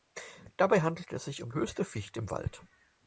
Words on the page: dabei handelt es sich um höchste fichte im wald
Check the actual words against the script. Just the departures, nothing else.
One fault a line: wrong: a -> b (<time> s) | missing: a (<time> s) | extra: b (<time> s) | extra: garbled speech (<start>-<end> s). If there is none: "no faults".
no faults